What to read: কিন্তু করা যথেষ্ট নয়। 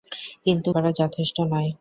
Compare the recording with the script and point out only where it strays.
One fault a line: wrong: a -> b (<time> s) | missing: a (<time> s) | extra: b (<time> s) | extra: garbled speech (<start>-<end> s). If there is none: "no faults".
no faults